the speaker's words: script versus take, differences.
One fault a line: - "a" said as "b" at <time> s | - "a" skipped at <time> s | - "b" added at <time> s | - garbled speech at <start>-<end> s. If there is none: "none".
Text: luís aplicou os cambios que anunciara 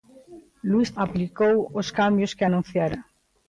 none